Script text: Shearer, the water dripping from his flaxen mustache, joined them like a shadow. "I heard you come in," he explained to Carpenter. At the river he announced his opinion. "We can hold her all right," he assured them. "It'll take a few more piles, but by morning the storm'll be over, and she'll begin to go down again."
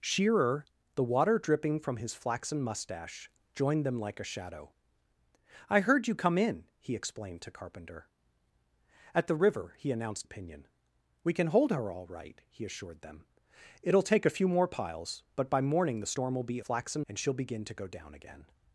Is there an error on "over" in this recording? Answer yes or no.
yes